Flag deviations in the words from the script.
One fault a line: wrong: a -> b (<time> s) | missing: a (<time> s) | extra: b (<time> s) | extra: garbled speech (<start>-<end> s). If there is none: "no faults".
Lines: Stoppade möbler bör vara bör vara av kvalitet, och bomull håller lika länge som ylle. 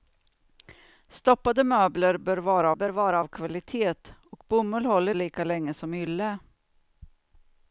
no faults